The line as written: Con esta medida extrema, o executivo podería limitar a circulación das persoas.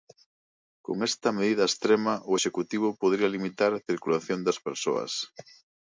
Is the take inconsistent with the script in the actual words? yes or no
no